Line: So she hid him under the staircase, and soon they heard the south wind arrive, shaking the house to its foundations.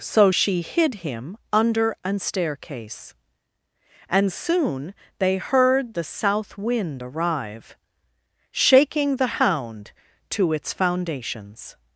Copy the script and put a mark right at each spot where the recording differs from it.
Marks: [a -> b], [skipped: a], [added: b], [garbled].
So she hid him under [the -> an] staircase, and soon they heard the south wind arrive, shaking the [house -> hound] to its foundations.